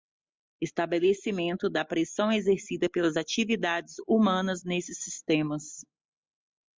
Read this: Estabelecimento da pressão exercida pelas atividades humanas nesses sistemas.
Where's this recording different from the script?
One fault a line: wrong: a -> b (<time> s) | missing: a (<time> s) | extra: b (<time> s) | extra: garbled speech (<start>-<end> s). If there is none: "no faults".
no faults